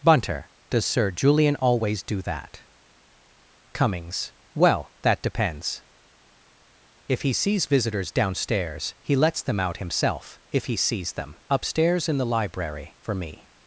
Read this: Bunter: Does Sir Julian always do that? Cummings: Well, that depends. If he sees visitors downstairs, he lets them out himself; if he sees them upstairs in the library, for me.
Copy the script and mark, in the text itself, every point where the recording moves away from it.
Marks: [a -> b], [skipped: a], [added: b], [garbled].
Bunter: Does Sir Julian always do that? Cummings: Well, that depends. If he sees visitors downstairs, he lets them out himself; if he sees them upstairs in the library, for me.